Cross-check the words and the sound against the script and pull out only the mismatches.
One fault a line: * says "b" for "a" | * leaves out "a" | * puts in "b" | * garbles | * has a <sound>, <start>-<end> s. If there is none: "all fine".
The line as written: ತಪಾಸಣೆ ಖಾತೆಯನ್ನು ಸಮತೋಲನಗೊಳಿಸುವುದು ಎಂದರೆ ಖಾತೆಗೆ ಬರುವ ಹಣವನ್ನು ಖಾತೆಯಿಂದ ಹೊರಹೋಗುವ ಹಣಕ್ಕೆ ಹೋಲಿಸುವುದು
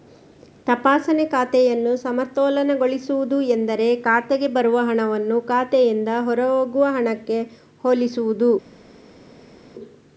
all fine